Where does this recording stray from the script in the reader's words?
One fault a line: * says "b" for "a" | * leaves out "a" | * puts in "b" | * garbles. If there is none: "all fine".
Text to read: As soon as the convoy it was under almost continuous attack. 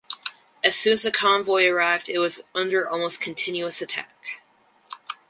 * puts in "arrived"